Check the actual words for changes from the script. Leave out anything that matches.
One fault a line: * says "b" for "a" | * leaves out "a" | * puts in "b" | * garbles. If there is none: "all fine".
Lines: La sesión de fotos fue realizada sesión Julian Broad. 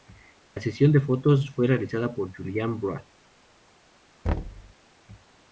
* says "por" for "sesión"